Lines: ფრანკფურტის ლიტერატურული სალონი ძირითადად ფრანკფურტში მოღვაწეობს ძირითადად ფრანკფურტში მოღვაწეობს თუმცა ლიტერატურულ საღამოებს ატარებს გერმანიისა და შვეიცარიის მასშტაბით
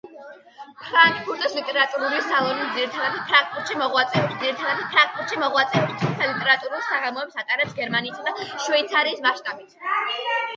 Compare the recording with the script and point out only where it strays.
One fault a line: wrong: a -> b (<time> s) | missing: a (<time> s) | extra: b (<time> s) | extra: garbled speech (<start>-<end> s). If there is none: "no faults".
no faults